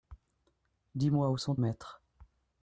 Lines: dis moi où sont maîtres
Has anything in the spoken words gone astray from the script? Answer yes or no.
no